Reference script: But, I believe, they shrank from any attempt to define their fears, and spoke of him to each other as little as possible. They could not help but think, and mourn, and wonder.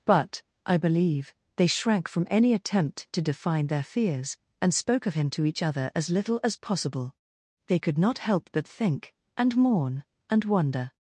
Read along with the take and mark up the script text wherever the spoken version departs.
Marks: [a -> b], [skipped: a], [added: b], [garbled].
But, I believe, they shrank from any attempt to define their fears, and spoke of him to each other as little as possible. They could not help but think, and mourn, and wonder.